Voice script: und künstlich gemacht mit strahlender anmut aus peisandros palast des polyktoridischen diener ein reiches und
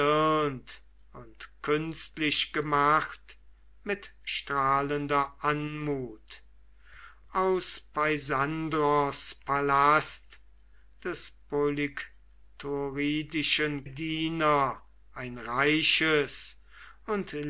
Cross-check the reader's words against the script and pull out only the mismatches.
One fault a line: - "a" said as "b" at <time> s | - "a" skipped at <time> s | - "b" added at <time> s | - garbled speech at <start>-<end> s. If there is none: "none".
none